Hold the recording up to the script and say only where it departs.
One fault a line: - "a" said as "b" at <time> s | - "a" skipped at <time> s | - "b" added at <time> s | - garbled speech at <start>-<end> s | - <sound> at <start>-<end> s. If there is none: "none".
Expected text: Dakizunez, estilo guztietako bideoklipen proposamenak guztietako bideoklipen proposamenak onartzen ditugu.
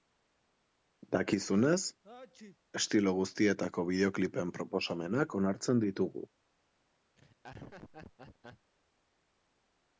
- sneeze at 2.0-2.6 s
- "guztietako bideoklipen proposamenak" skipped at 5.4 s
- laugh at 7.2-8.7 s